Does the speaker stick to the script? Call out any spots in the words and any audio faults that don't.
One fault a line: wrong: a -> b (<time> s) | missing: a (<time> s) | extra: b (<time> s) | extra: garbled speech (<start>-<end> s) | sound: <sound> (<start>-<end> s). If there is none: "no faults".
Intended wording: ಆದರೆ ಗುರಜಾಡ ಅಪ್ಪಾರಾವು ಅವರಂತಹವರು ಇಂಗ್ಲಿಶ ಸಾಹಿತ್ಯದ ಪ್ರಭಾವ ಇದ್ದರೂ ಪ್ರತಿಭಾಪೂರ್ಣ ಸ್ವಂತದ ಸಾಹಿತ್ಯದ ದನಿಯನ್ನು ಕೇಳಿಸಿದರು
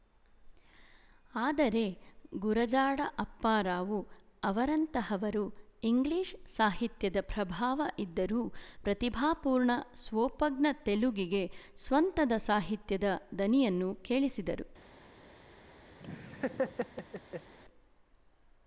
extra: ಸ್ವೋಪಜ್ಞ ತೆಲುಗಿಗೆ (10.0 s)
sound: laugh (16.0-17.5 s)